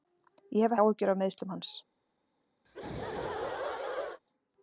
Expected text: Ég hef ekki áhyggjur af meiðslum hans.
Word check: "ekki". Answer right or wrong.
wrong